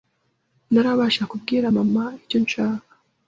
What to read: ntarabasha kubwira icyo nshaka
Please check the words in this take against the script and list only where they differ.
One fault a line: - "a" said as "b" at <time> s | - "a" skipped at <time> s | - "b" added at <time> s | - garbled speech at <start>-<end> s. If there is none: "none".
- "mama" added at 1.8 s